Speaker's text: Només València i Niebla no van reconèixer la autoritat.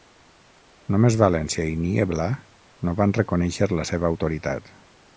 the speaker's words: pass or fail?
fail